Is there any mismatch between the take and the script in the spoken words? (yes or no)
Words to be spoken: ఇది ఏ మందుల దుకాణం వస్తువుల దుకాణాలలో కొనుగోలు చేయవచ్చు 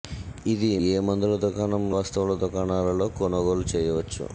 no